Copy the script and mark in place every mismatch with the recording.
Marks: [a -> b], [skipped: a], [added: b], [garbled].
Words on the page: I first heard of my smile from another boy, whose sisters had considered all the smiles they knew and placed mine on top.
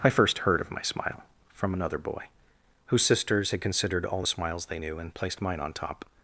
I first heard of my smile from another boy, whose sisters had considered all the smiles they knew and placed mine on top.